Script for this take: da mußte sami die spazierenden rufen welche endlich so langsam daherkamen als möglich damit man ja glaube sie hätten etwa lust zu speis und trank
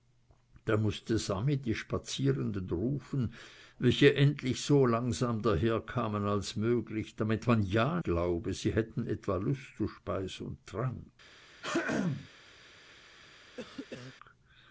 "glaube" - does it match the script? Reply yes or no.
yes